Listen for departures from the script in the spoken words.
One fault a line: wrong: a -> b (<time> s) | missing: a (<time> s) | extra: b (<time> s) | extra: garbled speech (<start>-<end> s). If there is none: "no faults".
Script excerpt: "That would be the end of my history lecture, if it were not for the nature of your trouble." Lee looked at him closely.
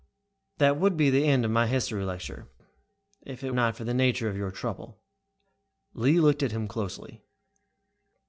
missing: were (3.5 s)